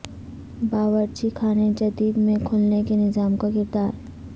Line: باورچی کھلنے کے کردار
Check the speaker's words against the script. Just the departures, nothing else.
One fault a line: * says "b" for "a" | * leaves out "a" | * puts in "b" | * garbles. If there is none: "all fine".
* puts in "خانے جدید میں"
* puts in "نظام کا"